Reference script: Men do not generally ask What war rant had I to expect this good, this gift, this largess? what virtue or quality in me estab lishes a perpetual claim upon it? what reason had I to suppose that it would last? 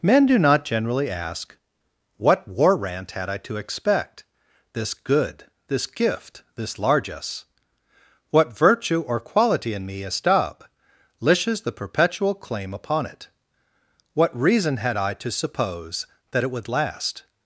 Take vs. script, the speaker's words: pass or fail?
fail